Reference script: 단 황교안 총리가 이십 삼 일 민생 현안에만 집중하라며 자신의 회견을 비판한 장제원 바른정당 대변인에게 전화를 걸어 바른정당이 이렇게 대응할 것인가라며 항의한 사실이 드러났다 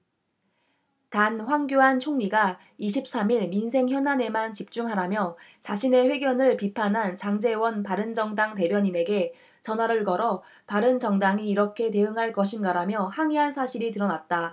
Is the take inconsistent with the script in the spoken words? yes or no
no